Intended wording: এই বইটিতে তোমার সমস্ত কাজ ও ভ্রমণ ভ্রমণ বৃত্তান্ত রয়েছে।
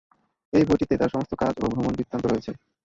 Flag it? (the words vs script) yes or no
yes